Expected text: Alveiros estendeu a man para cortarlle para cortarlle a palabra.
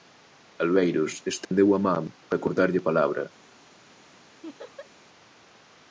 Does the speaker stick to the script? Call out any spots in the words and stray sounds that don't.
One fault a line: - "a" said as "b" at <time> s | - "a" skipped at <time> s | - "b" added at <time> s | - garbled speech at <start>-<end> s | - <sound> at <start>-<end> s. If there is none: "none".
- dropout at 1.4-1.5 s
- "para cortarlle" skipped at 2.8 s
- laugh at 4.4-4.9 s